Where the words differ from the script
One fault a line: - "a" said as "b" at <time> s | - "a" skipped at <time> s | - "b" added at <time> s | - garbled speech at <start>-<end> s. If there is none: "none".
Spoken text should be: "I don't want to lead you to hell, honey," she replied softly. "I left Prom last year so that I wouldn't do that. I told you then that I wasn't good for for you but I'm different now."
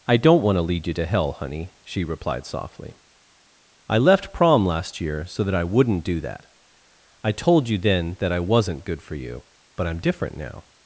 - "for" skipped at 9.1 s